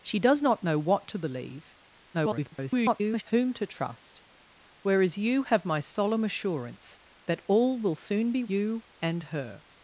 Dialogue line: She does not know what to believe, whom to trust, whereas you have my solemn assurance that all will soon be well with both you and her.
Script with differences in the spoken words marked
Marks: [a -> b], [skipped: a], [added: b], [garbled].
She does not know what to believe, [garbled] whom to trust, whereas you have my solemn assurance that all will soon be [skipped: well with both] you and her.